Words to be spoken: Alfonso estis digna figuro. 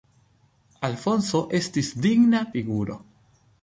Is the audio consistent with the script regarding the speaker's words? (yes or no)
yes